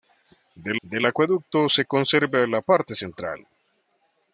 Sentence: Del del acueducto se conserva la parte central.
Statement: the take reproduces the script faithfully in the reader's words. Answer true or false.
true